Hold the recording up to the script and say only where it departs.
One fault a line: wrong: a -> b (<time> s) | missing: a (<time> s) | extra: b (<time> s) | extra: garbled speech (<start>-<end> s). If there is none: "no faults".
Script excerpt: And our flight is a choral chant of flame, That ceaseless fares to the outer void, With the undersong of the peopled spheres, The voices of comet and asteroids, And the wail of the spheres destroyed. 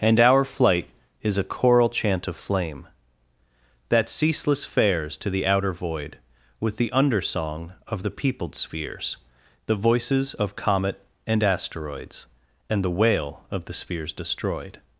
no faults